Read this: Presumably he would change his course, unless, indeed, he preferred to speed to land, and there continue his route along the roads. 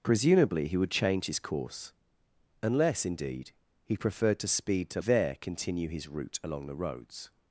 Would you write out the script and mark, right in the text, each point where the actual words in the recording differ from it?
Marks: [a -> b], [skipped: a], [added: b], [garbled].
Presumably he would change his course, unless, indeed, he preferred to speed to [skipped: land, and] there continue his route along the roads.